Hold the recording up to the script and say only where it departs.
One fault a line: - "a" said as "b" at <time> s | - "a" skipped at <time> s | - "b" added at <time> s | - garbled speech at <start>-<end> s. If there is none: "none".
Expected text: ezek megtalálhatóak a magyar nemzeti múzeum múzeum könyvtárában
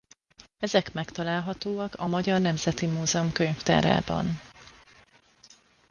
- "múzeum" skipped at 3.3 s